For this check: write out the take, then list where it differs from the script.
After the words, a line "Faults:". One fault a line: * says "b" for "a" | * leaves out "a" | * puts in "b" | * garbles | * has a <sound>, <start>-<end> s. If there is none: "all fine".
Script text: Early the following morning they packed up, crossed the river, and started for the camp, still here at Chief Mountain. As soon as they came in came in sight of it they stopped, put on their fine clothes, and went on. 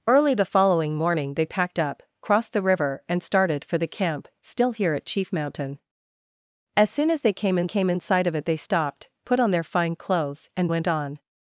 Early the following morning they packed up, crossed the river, and started for the camp, still here at Chief Mountain. As soon as they came in came in sight of it they stopped, put on their fine clothes, and went on.
Faults:
all fine